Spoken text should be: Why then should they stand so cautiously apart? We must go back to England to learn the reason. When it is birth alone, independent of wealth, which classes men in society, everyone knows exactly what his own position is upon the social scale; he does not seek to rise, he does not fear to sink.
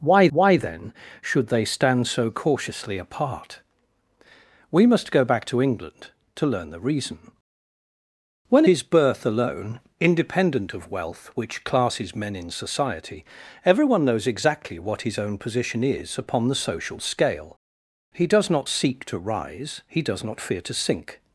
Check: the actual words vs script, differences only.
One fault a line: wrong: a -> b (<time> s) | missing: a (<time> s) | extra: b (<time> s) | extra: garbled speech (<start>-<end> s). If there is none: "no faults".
extra: why (0.3 s)
missing: it (8.6 s)